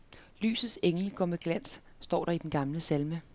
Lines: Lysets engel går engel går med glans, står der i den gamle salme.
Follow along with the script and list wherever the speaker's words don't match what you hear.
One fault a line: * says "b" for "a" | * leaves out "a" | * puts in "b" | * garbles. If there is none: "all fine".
* leaves out "engel går"